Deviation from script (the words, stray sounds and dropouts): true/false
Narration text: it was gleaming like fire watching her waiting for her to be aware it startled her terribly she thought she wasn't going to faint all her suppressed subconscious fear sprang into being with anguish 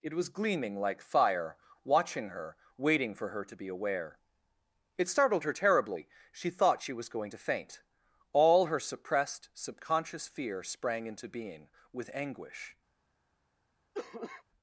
true